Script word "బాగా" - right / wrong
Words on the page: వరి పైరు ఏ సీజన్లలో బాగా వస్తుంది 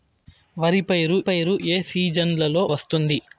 wrong